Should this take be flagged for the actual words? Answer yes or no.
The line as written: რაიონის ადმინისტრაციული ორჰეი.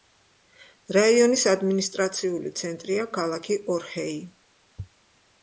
yes